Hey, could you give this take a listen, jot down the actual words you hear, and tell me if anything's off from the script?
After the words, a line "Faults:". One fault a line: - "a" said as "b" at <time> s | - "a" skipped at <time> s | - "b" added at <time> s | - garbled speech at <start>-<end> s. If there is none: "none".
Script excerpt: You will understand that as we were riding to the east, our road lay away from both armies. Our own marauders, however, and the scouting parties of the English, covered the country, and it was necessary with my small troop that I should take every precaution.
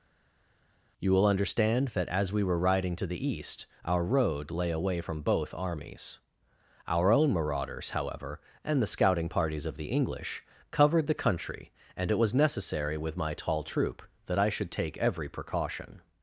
You will understand that as we were riding to the east, our road lay away from both armies. Our own marauders, however, and the scouting parties of the English, covered the country, and it was necessary with my tall troop that I should take every precaution.
Faults:
- "small" said as "tall" at 13.3 s